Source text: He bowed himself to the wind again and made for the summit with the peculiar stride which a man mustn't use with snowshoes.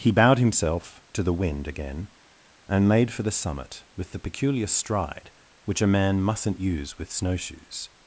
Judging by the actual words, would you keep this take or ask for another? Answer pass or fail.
pass